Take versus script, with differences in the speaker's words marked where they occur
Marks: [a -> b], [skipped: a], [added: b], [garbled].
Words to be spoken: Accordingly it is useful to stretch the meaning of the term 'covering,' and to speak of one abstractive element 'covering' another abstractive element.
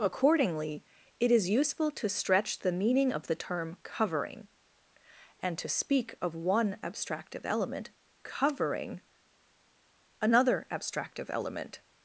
Accordingly it is useful to stretch the meaning of the term 'covering,' and to speak of one abstractive element 'covering' another abstractive element.